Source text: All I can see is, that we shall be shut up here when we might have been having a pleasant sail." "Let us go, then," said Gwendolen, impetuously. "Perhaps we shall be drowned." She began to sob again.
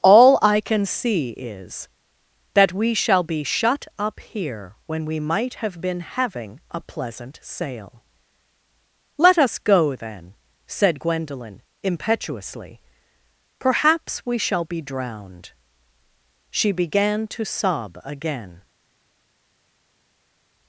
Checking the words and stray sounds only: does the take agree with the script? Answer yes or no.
yes